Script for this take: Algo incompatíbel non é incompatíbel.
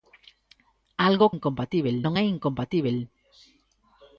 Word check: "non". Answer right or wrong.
right